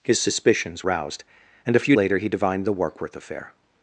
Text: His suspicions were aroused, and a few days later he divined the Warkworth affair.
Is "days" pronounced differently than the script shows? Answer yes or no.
yes